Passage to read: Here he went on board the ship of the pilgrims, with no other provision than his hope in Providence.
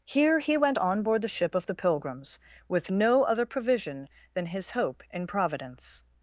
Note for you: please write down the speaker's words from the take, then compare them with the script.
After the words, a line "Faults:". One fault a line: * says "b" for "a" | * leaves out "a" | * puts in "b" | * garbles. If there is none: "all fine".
Here he went on board the ship of the pilgrims, with no other provision than his hope in Providence.
Faults:
all fine